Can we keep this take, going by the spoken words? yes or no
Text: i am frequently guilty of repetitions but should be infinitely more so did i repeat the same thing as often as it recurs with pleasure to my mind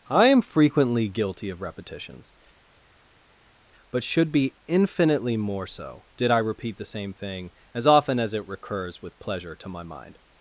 yes